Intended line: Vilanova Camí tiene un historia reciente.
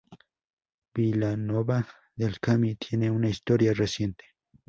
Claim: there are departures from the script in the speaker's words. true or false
true